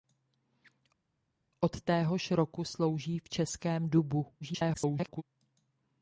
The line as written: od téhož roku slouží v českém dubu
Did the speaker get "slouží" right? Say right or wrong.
right